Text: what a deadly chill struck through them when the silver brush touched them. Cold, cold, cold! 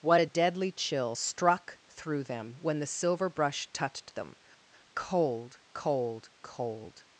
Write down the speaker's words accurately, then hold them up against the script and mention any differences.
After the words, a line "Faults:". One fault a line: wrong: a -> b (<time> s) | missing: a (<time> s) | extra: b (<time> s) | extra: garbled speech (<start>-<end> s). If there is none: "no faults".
what a deadly chill struck through them when the silver brush touched them. Cold, cold, cold!
Faults:
no faults